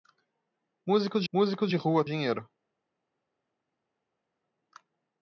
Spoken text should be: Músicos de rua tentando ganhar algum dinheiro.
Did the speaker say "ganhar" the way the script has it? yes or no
no